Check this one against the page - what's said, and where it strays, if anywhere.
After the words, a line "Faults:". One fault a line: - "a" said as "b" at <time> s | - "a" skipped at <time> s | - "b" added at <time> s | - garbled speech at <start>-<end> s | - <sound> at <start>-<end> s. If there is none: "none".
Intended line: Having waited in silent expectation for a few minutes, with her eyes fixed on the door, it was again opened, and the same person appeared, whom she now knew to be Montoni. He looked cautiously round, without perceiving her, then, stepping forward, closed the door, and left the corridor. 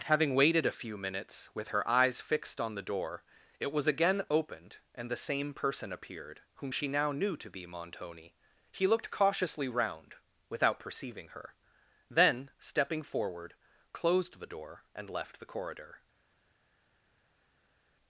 Having waited a few minutes, with her eyes fixed on the door, it was again opened, and the same person appeared, whom she now knew to be Montoni. He looked cautiously round, without perceiving her, then, stepping forward, closed the door, and left the corridor.
Faults:
- "in silent expectation for" skipped at 0.7 s